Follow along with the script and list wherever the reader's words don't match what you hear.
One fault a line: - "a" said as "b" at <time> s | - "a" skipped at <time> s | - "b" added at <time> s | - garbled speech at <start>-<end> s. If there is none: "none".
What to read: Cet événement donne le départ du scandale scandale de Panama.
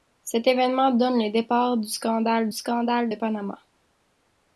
none